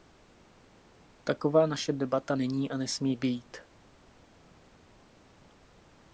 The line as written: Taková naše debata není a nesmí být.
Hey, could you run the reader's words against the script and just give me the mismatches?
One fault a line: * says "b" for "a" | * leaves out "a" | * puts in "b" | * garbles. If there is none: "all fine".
all fine